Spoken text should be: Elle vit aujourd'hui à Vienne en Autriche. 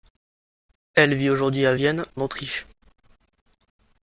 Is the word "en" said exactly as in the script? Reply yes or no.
no